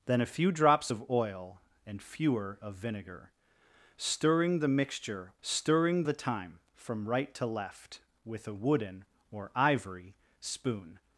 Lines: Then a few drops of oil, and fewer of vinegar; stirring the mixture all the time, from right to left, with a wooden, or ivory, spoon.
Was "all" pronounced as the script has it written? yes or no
no